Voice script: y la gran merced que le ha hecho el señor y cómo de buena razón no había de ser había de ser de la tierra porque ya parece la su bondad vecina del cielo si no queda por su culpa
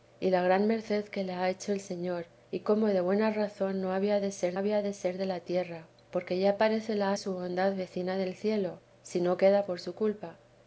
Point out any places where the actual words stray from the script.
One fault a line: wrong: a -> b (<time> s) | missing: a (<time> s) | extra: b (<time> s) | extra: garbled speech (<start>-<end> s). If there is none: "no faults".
no faults